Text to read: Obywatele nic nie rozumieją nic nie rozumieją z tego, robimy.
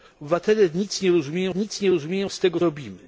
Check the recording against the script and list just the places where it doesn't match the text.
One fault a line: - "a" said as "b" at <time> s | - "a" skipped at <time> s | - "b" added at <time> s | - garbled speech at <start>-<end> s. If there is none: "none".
none